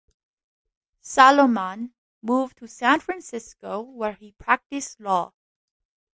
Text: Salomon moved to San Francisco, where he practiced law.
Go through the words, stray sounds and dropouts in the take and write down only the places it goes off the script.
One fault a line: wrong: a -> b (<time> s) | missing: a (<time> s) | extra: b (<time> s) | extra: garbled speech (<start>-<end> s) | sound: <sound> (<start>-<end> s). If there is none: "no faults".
no faults